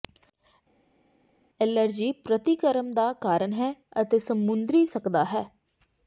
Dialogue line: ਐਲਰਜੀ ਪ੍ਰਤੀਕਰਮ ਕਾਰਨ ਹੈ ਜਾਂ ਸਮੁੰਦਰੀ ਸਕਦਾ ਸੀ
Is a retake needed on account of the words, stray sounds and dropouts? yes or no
yes